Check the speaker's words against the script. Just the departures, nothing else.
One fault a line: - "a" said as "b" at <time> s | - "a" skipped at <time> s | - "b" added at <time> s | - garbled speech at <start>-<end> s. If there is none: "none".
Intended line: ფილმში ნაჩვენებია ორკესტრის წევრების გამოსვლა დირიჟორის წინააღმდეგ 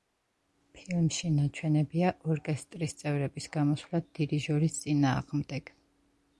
none